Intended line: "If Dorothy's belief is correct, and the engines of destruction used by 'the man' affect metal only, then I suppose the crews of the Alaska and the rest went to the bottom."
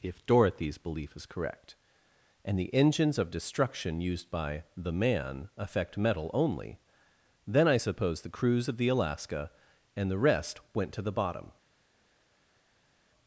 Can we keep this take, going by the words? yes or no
yes